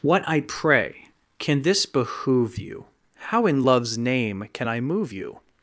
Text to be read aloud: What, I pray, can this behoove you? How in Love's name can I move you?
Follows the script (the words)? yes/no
yes